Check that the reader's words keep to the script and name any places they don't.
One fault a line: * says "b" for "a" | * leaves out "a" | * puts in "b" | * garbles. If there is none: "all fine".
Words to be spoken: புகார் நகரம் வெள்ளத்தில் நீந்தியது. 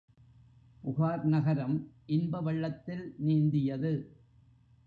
* puts in "இன்ப"